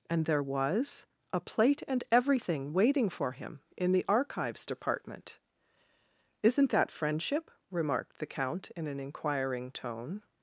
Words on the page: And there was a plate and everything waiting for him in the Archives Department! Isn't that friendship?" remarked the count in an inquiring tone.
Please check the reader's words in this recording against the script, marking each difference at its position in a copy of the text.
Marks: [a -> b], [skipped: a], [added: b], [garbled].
And there was a plate and everything waiting for him in the Archives Department! Isn't that friendship?" remarked the count in an inquiring tone.